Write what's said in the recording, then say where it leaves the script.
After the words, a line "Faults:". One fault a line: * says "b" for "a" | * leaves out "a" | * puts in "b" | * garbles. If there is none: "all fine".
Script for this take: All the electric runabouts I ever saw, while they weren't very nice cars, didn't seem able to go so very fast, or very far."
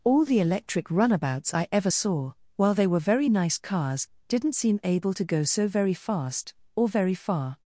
All the electric runabouts I ever saw, while they were very nice cars, didn't seem able to go so very fast, or very far."
Faults:
* says "were" for "weren't"